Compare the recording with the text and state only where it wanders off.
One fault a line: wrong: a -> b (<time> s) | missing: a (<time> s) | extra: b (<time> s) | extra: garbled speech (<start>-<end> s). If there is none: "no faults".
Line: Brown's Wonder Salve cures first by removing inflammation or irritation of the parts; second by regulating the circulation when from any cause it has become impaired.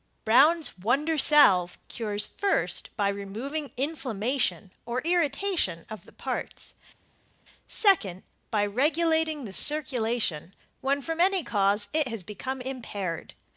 no faults